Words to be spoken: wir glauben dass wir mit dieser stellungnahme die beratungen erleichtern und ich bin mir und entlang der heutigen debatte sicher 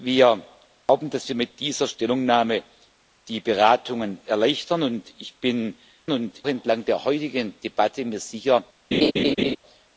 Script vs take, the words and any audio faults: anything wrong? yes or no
yes